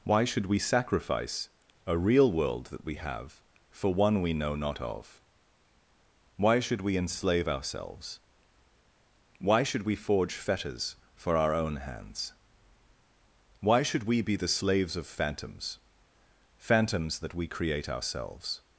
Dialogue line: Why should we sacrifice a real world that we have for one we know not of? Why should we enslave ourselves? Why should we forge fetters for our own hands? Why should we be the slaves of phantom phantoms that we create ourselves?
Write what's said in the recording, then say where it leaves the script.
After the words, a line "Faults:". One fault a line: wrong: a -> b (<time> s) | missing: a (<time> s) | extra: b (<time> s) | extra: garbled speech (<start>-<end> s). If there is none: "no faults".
Why should we sacrifice a real world that we have for one we know not of? Why should we enslave ourselves? Why should we forge fetters for our own hands? Why should we be the slaves of phantoms phantoms that we create ourselves?
Faults:
wrong: phantom -> phantoms (15.1 s)